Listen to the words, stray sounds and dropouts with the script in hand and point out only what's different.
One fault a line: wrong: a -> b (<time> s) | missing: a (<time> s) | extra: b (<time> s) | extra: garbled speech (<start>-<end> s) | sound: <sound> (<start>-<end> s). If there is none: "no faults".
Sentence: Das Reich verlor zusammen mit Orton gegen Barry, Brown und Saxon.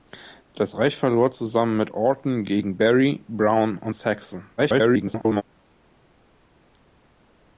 extra: garbled speech (4.6-5.4 s)